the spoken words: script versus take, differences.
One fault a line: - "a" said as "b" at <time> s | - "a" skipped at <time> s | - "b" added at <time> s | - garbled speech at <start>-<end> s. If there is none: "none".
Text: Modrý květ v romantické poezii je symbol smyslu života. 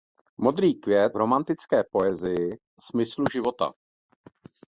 - "v" skipped at 1.2 s
- "je symbol" skipped at 2.5 s